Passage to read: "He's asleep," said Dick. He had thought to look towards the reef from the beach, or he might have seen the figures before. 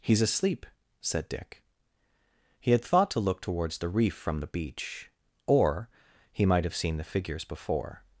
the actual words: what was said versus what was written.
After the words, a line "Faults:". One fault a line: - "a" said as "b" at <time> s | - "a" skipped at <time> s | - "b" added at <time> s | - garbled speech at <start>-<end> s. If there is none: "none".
"He's asleep," said Dick. He had thought to look towards the reef from the beach, or he might have seen the figures before.
Faults:
none